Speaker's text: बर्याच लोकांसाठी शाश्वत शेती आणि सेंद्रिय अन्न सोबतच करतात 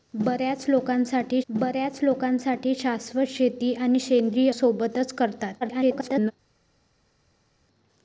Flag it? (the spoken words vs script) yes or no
yes